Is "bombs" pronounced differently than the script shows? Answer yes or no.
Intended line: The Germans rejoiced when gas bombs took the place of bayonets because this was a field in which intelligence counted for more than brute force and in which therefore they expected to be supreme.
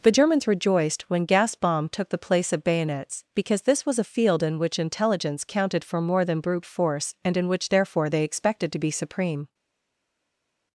yes